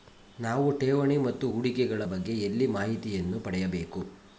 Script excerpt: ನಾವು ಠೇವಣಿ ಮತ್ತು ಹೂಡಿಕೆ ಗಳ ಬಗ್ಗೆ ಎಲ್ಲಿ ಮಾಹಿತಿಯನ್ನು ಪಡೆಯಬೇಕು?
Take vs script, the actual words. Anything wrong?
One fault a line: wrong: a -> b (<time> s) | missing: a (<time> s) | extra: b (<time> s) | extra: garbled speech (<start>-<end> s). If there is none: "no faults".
no faults